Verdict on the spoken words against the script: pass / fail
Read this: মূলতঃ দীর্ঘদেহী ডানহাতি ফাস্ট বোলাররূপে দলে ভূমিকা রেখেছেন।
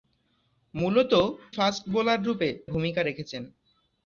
fail